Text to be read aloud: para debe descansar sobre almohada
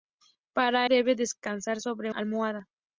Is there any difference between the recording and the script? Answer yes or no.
no